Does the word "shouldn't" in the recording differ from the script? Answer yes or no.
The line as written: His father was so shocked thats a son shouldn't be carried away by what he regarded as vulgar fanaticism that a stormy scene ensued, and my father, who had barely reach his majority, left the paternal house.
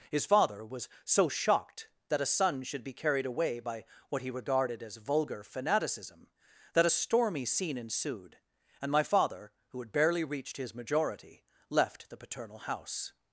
yes